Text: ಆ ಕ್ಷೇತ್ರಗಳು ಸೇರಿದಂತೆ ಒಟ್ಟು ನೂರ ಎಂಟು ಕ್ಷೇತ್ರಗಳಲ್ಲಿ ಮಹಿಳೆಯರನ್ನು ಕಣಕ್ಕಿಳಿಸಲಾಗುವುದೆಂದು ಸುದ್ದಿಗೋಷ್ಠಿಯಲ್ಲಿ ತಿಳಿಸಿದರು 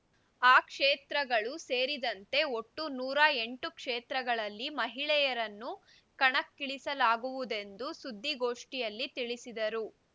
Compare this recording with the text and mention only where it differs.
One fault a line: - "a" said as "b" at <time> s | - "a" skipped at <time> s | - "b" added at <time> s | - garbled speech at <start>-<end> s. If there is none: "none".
none